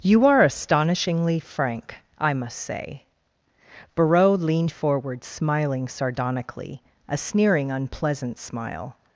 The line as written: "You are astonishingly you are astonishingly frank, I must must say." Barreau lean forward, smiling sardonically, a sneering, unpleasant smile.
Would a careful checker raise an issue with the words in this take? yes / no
yes